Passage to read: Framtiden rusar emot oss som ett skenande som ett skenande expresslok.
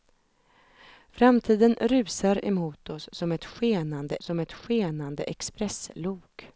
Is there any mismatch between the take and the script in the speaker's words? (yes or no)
no